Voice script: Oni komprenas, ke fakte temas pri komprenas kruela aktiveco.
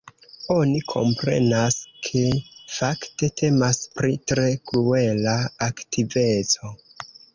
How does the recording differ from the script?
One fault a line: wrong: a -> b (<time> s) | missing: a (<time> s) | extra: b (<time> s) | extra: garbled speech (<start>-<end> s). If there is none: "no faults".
wrong: komprenas -> tre (4.3 s)